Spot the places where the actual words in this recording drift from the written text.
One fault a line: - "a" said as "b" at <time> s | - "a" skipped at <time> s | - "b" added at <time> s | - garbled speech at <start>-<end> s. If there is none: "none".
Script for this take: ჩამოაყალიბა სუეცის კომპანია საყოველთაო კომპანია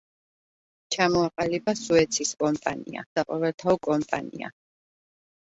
none